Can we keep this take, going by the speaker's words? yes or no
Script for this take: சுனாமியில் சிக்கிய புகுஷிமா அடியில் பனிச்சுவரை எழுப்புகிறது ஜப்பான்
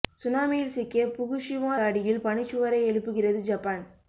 yes